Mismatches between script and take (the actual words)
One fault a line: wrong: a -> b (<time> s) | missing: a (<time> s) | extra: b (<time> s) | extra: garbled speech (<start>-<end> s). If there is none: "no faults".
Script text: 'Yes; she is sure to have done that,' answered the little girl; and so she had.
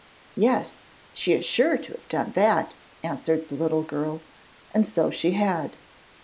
no faults